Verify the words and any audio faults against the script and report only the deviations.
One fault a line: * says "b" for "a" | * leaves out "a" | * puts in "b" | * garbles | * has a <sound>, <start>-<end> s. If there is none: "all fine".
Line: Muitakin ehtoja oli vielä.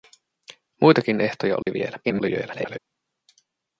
* has a dropout, 1.6-1.7 s
* garbles